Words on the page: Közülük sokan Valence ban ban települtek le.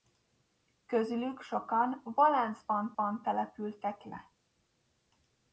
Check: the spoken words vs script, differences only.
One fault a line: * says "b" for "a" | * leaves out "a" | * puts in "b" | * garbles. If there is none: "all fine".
all fine